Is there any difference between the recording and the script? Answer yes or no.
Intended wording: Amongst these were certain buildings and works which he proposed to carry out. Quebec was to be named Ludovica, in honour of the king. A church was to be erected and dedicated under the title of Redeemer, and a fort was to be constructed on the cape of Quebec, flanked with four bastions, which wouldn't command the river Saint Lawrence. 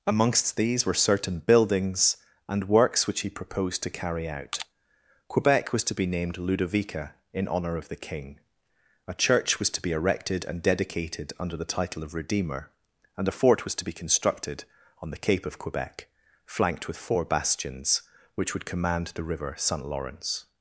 yes